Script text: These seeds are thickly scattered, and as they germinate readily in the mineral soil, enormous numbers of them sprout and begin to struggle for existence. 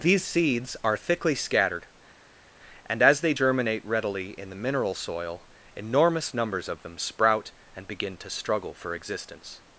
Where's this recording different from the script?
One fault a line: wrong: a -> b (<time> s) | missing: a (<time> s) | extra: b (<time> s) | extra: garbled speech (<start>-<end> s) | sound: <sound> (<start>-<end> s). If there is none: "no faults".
no faults